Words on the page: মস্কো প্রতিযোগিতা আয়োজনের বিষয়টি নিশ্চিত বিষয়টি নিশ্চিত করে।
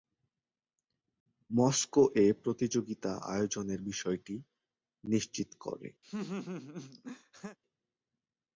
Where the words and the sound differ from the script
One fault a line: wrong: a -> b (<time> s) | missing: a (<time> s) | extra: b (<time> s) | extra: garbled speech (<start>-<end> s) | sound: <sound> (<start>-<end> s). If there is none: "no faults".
extra: এ (2.1 s)
missing: বিষয়টি নিশ্চিত (5.5 s)
sound: laugh (6.0-7.6 s)